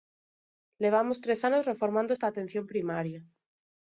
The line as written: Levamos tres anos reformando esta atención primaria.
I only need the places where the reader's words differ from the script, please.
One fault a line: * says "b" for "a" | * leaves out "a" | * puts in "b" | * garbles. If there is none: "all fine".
all fine